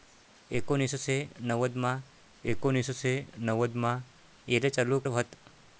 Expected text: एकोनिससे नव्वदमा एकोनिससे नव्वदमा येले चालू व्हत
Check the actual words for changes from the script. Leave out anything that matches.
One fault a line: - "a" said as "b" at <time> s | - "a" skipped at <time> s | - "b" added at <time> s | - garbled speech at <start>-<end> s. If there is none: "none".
none